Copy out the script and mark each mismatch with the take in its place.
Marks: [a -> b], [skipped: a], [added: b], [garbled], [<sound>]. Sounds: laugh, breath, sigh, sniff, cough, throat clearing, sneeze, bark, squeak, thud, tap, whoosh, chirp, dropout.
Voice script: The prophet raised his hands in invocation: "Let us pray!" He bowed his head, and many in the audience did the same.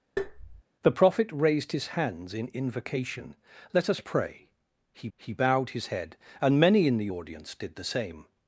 [tap] The prophet raised his hands in invocation: "Let us pray!" He [added: he] bowed his head, and many in the audience did the same.